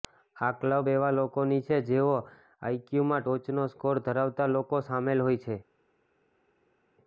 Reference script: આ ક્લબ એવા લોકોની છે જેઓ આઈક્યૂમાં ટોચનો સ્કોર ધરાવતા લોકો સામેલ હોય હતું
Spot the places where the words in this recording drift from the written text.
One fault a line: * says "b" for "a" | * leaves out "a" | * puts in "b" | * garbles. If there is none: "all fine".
* says "છે" for "હતું"